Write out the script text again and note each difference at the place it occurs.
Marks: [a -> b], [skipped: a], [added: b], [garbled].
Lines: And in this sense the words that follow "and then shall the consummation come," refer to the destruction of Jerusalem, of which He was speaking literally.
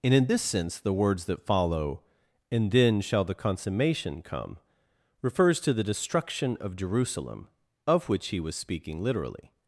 And in this sense the words that follow "and then shall the consummation come," [refer -> refers] to the destruction of Jerusalem, of which He was speaking literally.